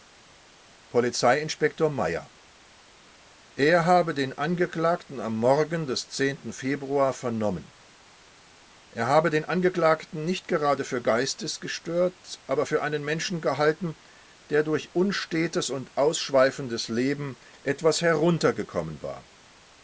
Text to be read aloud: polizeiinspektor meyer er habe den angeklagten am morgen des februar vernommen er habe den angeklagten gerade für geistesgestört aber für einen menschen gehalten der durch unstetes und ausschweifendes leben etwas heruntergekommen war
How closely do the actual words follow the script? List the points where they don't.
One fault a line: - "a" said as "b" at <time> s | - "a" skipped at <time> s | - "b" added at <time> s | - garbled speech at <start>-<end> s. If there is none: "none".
- "nicht" added at 10.2 s